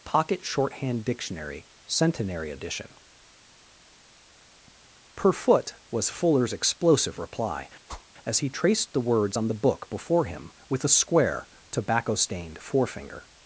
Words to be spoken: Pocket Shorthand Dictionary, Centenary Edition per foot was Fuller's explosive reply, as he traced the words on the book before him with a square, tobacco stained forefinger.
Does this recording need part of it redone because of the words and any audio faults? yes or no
yes